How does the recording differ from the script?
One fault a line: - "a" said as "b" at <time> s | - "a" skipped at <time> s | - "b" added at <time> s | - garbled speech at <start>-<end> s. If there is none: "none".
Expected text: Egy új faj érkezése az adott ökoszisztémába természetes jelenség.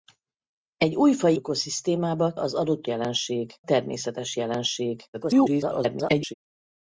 - "érkezése" said as "ökoszisztémába" at 1.3 s
- "ökoszisztémába" said as "jelenség" at 2.9 s
- garbled speech at 5.1-6.3 s